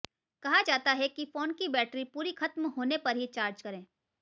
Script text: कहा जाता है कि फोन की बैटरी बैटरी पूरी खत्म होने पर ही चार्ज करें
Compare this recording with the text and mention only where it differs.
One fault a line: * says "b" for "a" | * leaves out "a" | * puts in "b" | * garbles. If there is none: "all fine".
* leaves out "बैटरी"